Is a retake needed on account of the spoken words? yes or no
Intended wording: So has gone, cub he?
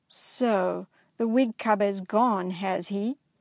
yes